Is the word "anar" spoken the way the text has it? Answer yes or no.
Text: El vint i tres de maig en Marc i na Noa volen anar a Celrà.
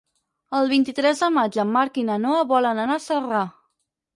yes